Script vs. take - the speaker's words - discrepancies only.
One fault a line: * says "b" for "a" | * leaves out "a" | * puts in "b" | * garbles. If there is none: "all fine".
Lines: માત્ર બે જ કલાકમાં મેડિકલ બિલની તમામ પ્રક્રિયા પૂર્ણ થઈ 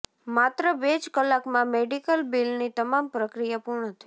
all fine